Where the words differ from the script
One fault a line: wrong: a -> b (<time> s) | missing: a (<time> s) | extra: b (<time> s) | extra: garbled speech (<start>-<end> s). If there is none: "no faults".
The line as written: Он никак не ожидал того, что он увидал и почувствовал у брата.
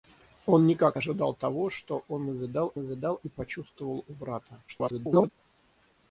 missing: не (1.0 s)
extra: увидал (2.8 s)
extra: garbled speech (4.7-5.3 s)